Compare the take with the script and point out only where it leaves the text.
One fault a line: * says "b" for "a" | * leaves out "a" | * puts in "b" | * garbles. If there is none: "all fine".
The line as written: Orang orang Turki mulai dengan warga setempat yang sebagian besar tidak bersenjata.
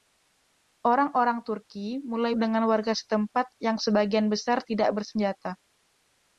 all fine